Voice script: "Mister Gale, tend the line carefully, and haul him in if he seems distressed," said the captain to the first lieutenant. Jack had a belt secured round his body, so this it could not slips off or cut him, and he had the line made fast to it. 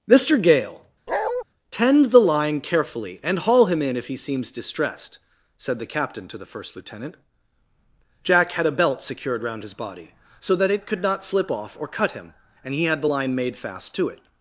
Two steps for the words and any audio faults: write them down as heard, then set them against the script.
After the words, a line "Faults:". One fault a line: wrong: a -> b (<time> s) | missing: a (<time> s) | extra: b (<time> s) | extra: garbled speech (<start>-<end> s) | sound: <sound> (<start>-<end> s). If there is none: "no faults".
"Mister Gale, tend the line carefully, and haul him in if he seems distressed," said the captain to the first lieutenant. Jack had a belt secured round his body, so that it could not slip off or cut him, and he had the line made fast to it.
Faults:
sound: bark (1.1-1.4 s)
wrong: this -> that (10.5 s)
wrong: slips -> slip (11.2 s)